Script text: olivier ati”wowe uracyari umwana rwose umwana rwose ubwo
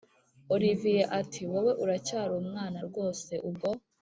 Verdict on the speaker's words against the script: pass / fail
fail